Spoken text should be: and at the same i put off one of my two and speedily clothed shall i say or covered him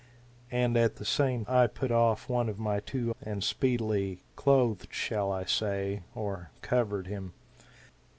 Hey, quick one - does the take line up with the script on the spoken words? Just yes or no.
yes